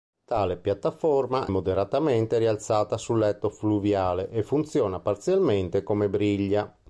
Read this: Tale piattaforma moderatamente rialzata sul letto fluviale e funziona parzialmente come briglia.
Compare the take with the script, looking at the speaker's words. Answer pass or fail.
pass